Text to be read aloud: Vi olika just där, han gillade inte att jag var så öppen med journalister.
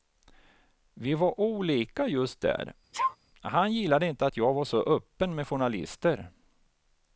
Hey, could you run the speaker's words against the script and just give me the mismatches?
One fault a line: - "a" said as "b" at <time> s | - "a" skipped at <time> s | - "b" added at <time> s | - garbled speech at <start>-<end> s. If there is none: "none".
- "var" added at 1.1 s